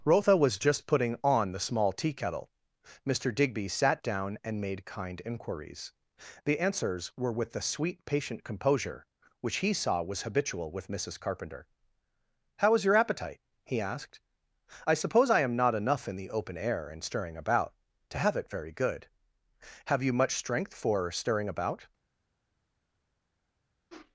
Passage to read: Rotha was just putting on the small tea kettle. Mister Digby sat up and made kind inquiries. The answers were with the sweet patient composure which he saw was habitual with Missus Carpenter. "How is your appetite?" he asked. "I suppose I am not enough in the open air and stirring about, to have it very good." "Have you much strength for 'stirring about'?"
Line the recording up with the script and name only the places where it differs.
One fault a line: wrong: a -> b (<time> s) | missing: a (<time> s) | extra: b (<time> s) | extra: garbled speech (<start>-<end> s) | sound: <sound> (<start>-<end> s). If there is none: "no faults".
wrong: up -> down (4.0 s)